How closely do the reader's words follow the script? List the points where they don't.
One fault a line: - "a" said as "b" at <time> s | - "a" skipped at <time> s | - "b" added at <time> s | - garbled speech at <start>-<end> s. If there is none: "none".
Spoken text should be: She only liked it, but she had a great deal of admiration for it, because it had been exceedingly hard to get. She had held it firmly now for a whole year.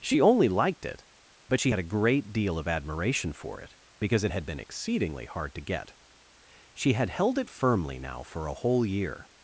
none